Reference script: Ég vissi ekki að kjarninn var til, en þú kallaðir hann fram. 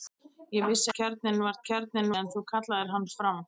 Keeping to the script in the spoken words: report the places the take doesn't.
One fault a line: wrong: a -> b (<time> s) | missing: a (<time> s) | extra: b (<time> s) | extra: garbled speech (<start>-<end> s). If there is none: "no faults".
missing: ekki (0.9 s)
wrong: til -> kjarninn (1.7 s)